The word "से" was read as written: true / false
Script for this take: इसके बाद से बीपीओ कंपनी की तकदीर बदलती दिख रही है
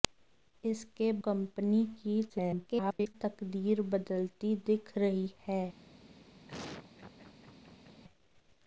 false